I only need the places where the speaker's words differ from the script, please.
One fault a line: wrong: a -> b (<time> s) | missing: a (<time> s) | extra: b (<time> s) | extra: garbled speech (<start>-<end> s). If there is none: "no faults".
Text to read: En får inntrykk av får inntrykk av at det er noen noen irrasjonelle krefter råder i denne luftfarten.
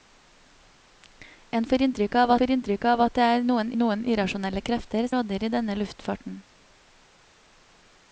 no faults